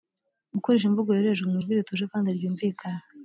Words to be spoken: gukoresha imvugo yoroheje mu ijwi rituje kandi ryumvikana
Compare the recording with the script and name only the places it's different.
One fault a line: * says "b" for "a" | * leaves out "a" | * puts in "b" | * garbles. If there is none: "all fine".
all fine